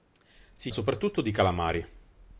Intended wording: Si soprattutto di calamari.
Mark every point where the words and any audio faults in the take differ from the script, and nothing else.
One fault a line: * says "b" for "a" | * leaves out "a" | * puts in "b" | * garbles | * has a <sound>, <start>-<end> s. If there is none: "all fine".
all fine